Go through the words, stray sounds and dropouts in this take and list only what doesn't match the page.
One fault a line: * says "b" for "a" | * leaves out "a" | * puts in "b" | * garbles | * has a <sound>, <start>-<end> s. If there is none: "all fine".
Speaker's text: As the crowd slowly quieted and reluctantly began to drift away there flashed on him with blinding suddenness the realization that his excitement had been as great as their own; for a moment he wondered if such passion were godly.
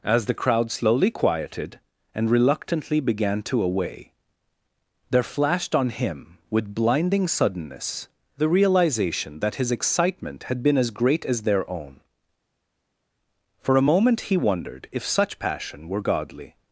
* leaves out "drift"